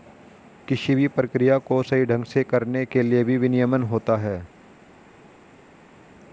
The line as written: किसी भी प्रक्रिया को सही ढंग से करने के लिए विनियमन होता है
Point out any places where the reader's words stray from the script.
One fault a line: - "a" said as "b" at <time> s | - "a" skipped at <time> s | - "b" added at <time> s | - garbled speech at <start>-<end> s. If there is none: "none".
- "भी" added at 3.2 s